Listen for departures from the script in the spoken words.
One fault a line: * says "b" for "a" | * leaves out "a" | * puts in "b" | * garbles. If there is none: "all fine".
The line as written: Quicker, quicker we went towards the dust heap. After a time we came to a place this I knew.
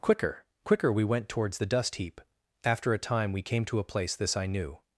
all fine